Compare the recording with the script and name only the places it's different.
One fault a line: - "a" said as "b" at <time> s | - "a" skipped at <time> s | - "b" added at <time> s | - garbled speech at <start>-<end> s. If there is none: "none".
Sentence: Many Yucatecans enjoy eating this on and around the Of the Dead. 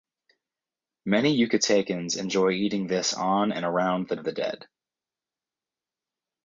none